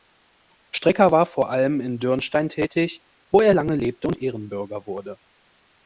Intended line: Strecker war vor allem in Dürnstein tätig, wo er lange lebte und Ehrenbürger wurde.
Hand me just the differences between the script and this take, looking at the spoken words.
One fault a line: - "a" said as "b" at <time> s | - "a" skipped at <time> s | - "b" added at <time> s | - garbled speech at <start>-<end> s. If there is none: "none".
none